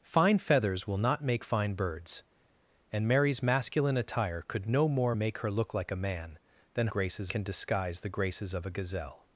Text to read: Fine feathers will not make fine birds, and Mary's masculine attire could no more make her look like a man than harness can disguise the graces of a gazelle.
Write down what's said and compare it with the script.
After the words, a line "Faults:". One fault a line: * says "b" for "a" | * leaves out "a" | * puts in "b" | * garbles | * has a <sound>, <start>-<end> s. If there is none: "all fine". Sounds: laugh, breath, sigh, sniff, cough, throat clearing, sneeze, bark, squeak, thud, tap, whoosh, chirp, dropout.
Fine feathers will not make fine birds, and Mary's masculine attire could no more make her look like a man than graces can disguise the graces of a gazelle.
Faults:
* says "graces" for "harness"